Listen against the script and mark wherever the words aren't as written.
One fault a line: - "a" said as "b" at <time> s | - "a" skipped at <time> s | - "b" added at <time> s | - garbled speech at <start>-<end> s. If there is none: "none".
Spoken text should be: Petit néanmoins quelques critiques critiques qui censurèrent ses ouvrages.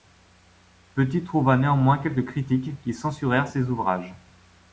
- "trouva" added at 1.2 s
- "critiques" skipped at 2.7 s